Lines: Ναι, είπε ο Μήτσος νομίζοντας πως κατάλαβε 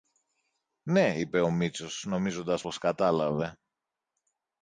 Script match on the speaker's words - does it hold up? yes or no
yes